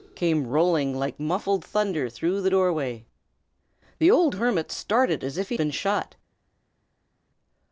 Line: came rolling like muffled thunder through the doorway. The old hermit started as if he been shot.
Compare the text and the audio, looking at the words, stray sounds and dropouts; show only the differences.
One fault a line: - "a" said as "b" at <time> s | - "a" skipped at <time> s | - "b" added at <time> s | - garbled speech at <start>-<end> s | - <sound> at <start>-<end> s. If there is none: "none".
none